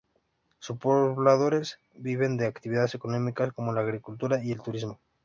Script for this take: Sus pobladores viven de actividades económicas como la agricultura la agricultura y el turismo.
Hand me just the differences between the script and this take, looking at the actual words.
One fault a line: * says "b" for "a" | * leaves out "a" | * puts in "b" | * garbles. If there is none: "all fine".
* leaves out "la agricultura"